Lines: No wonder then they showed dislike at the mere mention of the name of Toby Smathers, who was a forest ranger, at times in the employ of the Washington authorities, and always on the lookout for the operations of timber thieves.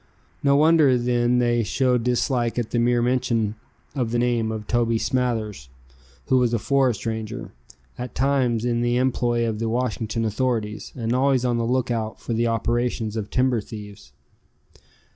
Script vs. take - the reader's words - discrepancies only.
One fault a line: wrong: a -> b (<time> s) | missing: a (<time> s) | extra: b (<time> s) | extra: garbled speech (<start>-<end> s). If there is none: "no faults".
no faults